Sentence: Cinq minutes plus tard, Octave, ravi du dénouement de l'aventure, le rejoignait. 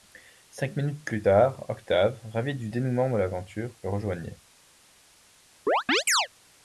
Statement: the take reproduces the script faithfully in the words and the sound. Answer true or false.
false